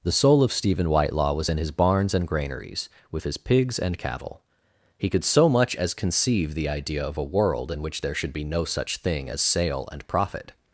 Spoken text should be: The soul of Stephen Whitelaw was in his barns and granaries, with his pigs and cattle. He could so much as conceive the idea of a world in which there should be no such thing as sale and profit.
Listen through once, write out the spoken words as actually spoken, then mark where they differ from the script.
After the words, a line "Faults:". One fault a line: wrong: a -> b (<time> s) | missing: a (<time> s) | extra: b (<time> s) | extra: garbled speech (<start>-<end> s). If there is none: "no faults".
The soul of Stephen Whitelaw was in his barns and granaries, with his pigs and cattle. He could so much as conceive the idea of a world in which there should be no such thing as sale and profit.
Faults:
no faults